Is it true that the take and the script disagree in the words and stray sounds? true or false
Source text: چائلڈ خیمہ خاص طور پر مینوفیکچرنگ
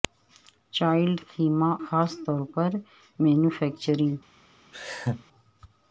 true